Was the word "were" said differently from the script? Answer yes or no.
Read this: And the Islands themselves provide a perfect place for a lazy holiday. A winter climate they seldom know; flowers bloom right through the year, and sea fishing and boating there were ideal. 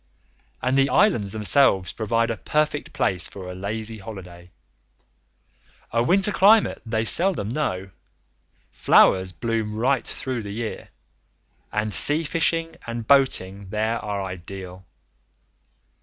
yes